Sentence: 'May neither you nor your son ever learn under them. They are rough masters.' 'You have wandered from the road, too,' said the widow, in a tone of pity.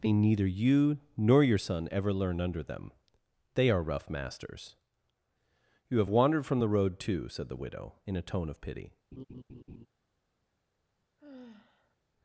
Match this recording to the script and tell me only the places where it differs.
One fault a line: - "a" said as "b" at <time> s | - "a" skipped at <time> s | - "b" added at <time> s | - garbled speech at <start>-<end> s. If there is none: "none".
none